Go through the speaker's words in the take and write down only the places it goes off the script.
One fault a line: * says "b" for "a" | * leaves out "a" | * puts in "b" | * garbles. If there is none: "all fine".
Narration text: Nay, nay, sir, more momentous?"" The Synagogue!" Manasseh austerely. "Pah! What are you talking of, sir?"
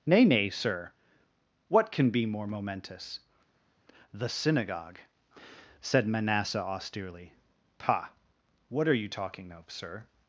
* puts in "what can be"
* puts in "said"